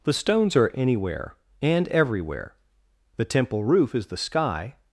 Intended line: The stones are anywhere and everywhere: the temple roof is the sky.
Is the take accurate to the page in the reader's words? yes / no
yes